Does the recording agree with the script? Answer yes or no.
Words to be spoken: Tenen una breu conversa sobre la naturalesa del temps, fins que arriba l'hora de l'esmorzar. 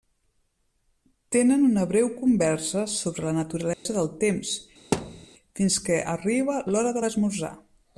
yes